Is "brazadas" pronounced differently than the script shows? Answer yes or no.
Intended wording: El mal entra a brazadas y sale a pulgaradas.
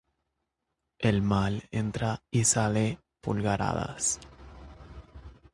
yes